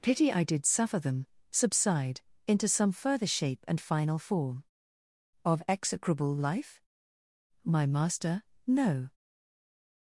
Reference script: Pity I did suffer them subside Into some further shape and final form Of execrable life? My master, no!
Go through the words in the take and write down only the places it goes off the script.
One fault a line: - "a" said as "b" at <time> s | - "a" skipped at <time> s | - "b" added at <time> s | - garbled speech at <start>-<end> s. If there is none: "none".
none